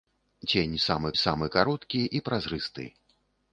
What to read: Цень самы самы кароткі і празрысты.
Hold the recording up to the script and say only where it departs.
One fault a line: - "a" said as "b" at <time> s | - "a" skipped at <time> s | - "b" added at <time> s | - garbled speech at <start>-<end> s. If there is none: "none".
none